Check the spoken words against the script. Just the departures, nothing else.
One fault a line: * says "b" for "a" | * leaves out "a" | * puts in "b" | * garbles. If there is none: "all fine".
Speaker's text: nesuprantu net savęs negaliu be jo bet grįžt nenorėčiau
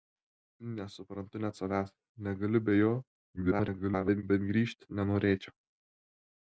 * garbles